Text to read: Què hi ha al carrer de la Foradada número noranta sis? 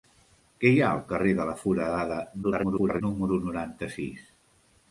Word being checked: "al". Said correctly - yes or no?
yes